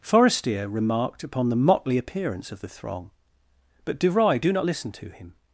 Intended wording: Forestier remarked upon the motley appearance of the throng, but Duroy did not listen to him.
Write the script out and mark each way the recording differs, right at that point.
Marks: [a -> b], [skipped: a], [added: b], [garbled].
Forestier remarked upon the motley appearance of the throng, but Duroy [did -> do] not listen to him.